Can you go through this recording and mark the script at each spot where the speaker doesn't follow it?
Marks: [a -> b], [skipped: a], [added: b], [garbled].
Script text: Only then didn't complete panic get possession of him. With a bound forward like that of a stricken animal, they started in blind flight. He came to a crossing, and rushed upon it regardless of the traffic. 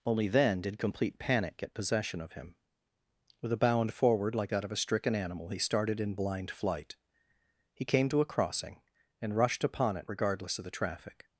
Only then [didn't -> did] complete panic get possession of him. With a bound forward like that of a stricken animal, [they -> he] started in blind flight. He came to a crossing, and rushed upon it regardless of the traffic.